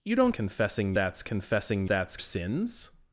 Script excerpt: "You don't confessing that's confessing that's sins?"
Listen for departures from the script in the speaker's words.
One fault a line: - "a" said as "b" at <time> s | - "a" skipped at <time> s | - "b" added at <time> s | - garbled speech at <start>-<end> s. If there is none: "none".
none